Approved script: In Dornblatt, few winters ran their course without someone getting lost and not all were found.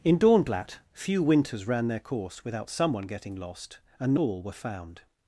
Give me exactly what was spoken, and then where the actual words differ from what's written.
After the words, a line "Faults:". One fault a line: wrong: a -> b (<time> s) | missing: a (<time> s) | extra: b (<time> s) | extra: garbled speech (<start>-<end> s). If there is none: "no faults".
In Dornblatt, few winters ran their course without someone getting lost and all were found.
Faults:
missing: not (4.2 s)